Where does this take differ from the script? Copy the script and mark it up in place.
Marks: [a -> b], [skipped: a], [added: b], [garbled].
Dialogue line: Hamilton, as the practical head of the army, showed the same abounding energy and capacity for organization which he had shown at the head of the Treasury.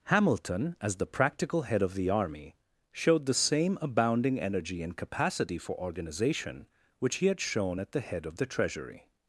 Hamilton, as the practical head of the army, showed the same abounding energy and capacity for organization which he had shown at the head of the Treasury.